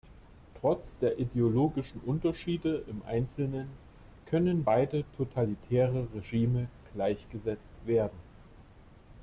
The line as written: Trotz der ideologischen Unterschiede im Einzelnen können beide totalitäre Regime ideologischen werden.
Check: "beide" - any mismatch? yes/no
no